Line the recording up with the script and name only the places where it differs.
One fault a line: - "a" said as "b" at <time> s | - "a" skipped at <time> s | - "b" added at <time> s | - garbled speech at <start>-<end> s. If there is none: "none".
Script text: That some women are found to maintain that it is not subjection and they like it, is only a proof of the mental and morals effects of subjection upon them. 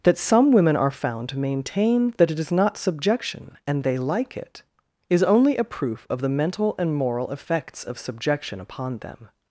- "morals" said as "moral" at 7.0 s